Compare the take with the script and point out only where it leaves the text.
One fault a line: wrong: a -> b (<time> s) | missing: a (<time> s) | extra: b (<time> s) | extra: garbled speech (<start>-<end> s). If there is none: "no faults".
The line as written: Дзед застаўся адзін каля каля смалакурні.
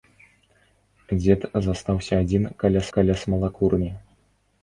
no faults